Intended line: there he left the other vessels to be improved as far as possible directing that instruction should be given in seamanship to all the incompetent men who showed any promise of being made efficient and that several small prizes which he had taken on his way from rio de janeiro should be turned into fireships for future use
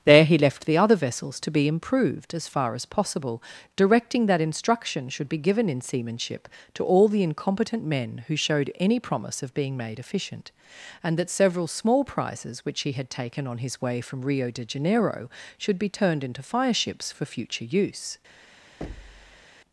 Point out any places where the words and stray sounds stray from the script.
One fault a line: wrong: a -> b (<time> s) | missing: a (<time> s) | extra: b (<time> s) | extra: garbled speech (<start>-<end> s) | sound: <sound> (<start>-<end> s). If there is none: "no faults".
sound: thud (18.8-19.5 s)